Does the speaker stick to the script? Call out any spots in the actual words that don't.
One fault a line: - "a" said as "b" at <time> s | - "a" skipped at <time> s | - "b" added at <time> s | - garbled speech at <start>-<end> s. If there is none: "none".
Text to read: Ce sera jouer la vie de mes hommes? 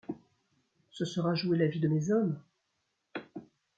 none